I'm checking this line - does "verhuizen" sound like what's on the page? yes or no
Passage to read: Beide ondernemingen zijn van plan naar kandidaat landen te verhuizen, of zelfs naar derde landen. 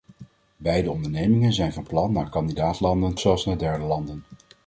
no